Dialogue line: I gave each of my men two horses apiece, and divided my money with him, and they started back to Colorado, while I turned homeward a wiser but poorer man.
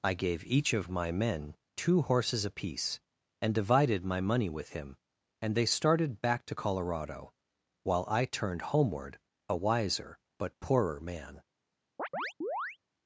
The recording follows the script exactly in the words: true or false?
true